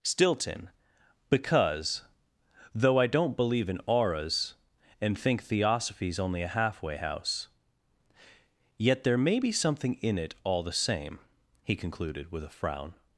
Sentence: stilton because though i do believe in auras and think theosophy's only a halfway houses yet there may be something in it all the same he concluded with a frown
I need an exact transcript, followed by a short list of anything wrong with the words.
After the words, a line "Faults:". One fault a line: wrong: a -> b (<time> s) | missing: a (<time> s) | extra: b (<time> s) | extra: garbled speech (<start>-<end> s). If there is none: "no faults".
stilton because though i don't believe in auras and think theosophy's only a halfway house yet there may be something in it all the same he concluded with a frown
Faults:
wrong: do -> don't (3.1 s)
wrong: houses -> house (7.0 s)